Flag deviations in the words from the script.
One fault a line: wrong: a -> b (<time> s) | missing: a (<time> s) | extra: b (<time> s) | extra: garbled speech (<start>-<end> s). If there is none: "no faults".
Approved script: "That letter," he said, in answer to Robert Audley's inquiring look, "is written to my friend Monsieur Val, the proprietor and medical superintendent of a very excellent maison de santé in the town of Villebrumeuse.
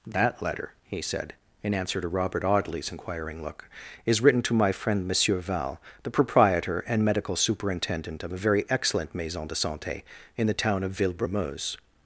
no faults